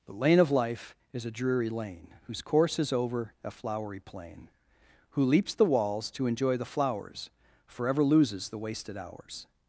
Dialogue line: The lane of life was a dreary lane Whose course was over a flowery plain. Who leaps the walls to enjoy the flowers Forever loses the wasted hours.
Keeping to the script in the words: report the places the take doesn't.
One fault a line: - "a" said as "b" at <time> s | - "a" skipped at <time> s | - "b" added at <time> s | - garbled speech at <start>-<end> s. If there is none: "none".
- "was" said as "is" at 1.1 s
- "was" said as "is" at 2.8 s